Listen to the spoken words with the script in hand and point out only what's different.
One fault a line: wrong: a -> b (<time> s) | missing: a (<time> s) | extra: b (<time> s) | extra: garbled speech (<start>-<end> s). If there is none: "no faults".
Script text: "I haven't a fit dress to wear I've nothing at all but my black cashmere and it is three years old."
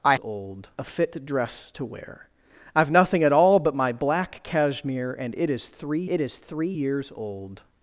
wrong: haven't -> old (0.2 s)
extra: it is three (6.1 s)